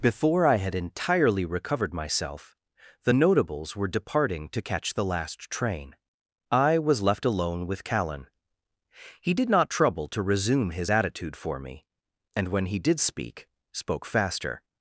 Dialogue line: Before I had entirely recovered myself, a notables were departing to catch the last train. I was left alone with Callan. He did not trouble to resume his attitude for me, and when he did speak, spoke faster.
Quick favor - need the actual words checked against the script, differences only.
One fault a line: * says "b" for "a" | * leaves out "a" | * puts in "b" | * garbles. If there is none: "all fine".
* says "the" for "a"